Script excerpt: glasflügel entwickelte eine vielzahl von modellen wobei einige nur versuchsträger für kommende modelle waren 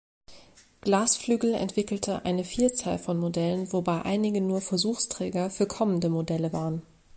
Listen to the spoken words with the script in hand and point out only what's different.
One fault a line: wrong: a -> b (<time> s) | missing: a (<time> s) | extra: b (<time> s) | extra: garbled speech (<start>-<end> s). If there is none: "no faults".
no faults